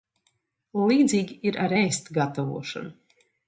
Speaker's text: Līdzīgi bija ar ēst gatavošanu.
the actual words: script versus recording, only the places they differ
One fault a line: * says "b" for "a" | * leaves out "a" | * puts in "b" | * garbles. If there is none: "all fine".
* says "ir" for "bija"